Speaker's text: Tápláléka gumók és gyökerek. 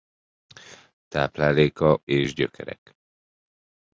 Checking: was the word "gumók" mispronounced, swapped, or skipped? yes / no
yes